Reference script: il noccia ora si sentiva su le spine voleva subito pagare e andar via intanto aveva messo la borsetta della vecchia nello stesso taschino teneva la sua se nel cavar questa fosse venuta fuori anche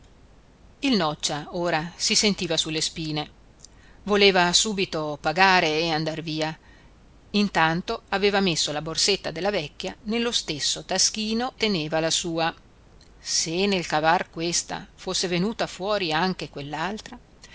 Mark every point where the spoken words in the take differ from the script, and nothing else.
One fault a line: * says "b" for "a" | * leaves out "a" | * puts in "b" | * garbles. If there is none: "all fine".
all fine